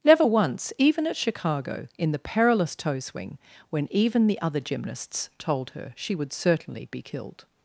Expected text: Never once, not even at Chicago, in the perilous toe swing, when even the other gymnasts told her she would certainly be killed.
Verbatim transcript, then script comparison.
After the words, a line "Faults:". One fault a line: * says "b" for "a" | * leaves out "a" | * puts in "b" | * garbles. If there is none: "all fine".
Never once, even at Chicago, in the perilous toe swing, when even the other gymnasts told her she would certainly be killed.
Faults:
* leaves out "not"